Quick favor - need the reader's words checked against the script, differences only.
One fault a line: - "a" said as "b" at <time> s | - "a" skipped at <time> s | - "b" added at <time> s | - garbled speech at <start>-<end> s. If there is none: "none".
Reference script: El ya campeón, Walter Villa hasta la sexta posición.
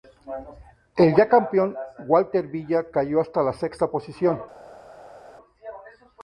- "cayó" added at 2.9 s